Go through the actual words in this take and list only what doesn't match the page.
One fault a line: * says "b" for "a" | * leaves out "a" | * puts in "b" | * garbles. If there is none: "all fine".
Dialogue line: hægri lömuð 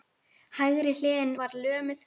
* puts in "hliðin var"